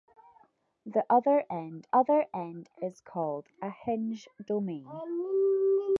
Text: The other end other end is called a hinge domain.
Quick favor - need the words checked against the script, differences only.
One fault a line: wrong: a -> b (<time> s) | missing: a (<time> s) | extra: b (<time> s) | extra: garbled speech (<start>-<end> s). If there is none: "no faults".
no faults